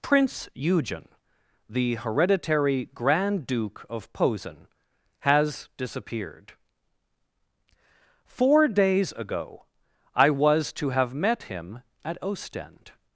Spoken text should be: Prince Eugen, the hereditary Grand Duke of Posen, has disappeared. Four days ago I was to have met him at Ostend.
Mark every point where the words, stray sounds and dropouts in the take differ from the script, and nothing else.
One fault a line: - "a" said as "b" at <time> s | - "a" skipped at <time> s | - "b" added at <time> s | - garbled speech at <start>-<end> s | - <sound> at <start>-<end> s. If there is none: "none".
none